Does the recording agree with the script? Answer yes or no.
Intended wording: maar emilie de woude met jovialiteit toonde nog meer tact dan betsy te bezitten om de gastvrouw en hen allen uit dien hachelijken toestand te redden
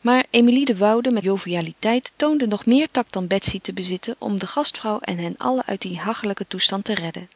yes